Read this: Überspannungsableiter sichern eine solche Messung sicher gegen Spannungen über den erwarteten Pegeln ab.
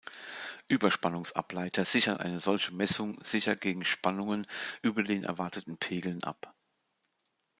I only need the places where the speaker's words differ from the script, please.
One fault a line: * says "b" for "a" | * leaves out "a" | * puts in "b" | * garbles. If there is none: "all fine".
all fine